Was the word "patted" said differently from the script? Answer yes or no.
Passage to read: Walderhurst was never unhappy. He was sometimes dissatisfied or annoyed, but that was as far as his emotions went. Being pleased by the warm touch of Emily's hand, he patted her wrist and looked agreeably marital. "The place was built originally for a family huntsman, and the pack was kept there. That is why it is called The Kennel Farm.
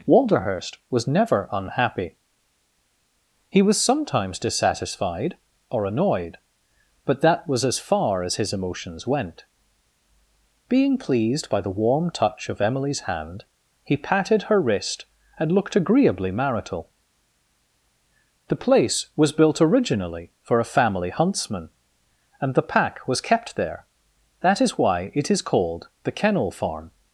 no